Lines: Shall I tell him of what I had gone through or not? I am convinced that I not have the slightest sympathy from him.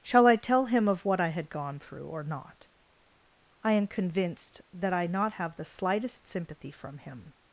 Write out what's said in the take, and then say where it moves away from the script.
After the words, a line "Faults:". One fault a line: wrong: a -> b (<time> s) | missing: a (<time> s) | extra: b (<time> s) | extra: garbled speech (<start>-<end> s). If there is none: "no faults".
Shall I tell him of what I had gone through or not? I am convinced that I not have the slightest sympathy from him.
Faults:
no faults